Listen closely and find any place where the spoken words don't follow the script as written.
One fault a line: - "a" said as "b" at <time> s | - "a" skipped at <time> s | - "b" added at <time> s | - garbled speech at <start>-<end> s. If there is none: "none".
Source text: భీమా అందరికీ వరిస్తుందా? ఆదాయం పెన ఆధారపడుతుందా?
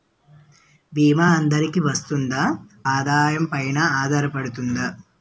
none